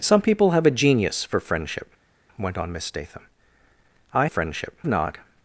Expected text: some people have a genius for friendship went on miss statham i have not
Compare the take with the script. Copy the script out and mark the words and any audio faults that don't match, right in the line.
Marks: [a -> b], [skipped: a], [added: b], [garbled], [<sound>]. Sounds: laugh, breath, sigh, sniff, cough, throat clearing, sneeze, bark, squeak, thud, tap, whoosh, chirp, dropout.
some people have a genius for friendship went on miss statham i [have -> friendship] not